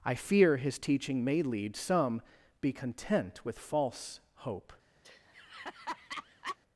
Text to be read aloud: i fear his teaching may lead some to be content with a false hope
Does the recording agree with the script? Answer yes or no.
no